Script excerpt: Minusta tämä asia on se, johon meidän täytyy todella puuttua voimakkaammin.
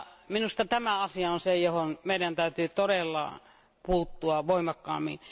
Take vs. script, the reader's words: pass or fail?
pass